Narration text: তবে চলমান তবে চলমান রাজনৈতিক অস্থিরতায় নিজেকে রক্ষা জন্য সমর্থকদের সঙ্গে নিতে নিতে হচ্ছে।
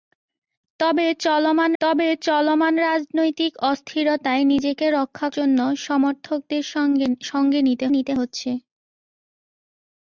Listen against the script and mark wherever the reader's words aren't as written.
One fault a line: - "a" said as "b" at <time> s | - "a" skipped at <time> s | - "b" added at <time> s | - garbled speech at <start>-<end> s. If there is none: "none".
none